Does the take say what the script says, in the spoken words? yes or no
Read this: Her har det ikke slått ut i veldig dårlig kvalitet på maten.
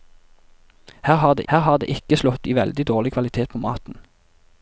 no